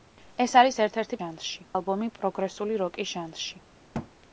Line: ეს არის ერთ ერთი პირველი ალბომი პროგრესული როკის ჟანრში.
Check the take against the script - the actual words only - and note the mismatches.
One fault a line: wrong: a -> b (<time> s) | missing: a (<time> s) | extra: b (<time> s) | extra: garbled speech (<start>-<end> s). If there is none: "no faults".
wrong: პირველი -> ჟანრში (1.2 s)